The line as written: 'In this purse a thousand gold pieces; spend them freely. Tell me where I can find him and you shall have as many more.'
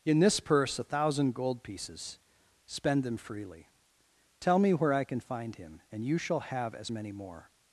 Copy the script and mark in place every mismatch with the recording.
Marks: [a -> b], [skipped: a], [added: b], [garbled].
'In this purse a thousand gold pieces; spend them freely. Tell me where I can find him and you shall have as many more.'